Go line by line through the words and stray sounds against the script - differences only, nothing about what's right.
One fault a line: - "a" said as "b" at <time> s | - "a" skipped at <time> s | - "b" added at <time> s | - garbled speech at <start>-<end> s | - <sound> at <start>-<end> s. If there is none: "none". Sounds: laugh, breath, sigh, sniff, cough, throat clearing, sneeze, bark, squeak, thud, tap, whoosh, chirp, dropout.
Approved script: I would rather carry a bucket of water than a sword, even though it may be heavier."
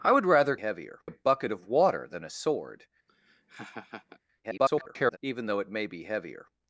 - "carry" said as "heavier" at 0.6 s
- laugh at 3.1-4.2 s
- garbled speech at 4.4-5.2 s